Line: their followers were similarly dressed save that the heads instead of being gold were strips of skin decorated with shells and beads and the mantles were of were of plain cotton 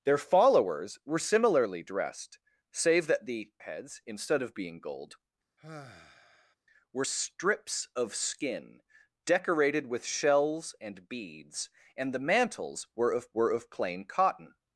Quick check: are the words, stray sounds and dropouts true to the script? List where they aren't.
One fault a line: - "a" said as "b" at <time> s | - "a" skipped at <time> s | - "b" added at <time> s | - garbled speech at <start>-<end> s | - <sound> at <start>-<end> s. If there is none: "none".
- sigh at 5.6-6.6 s